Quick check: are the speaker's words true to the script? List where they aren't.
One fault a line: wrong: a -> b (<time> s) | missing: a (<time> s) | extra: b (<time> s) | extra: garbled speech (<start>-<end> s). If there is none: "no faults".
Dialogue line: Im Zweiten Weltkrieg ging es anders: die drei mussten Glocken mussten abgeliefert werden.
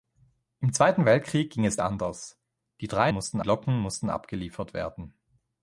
no faults